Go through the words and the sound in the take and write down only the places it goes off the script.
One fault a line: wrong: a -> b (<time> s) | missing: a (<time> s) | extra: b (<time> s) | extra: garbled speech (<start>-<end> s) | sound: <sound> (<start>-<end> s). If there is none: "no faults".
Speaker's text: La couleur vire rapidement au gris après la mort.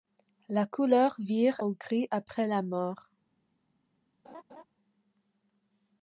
missing: rapidement (1.6 s)
sound: laugh (4.2-4.6 s)